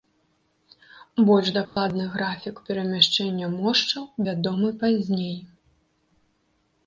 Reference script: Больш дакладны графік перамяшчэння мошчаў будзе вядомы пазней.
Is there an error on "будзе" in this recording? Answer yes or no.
yes